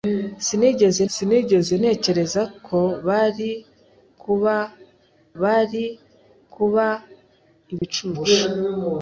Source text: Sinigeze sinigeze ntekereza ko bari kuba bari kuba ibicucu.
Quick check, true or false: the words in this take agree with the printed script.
true